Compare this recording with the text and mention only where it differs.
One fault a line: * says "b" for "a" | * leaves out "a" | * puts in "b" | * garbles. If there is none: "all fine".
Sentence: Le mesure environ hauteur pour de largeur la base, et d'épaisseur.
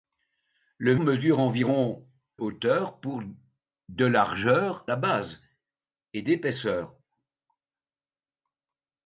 all fine